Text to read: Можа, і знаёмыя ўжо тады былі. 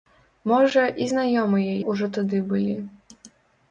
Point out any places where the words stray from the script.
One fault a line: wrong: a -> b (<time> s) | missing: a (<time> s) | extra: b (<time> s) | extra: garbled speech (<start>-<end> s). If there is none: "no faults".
no faults